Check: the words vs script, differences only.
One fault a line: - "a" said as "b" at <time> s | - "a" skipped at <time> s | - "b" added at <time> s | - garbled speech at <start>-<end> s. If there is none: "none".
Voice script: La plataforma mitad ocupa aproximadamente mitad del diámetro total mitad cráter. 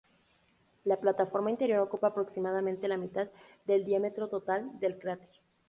- "mitad" said as "interior" at 1.5 s
- "la" added at 2.9 s
- "mitad" said as "del" at 4.8 s